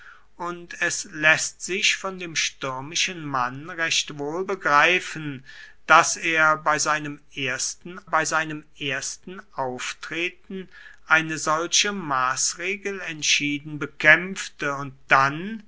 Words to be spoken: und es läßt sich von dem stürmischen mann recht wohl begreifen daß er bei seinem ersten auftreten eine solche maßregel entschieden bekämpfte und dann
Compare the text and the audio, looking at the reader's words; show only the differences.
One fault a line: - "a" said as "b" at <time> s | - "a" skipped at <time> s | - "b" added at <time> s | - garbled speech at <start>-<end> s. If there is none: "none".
- "bei seinem ersten" added at 8.1 s